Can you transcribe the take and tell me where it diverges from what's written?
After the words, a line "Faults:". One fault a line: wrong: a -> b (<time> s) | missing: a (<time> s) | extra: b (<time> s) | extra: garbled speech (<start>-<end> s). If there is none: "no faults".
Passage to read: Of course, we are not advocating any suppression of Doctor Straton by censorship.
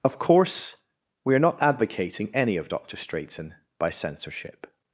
Of course, we are not advocating any of Doctor Straton by censorship.
Faults:
missing: suppression (2.6 s)